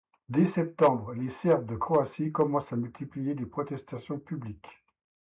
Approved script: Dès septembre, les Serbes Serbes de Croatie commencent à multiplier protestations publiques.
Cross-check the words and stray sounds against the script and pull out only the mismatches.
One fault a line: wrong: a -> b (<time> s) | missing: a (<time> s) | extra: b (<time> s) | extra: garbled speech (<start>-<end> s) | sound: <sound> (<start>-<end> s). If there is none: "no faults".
missing: Serbes (1.7 s)
extra: les (3.4 s)